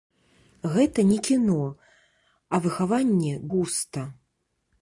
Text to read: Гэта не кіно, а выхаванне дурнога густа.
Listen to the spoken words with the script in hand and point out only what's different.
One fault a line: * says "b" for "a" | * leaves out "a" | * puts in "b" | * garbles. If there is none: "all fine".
* leaves out "дурнога"